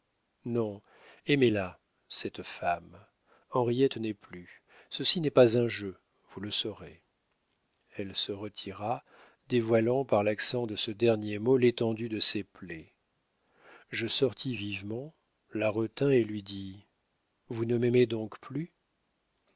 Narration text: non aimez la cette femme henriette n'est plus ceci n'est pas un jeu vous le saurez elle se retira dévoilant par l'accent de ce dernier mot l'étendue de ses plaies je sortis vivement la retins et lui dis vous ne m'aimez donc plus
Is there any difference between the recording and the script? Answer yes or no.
no